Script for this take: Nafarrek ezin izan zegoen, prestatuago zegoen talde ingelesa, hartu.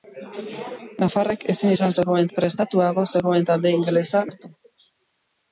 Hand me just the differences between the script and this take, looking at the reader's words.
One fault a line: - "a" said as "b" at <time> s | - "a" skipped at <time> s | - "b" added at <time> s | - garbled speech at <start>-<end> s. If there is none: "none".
none